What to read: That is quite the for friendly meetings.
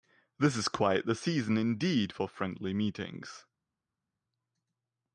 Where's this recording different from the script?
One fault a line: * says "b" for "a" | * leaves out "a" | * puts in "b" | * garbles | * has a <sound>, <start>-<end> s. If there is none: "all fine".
* says "This" for "That"
* puts in "season indeed"